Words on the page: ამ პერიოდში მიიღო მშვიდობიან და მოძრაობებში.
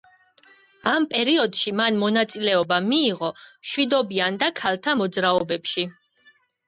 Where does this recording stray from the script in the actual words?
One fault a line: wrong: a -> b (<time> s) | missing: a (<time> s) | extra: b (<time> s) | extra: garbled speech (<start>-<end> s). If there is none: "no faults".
extra: მან მონაწილეობა (1.8 s)
extra: ქალთა (4.6 s)